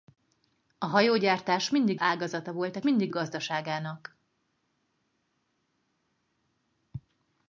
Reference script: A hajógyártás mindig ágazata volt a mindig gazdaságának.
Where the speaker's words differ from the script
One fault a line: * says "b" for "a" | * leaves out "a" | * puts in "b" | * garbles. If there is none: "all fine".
all fine